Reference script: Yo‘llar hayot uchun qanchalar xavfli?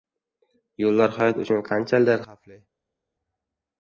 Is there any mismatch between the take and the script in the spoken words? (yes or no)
no